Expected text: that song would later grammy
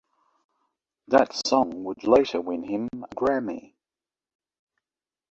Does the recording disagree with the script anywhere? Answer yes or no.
yes